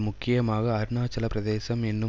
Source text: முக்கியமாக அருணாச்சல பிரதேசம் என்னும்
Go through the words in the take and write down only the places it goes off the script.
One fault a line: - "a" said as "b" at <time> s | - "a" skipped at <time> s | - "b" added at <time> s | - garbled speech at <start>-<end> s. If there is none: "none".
none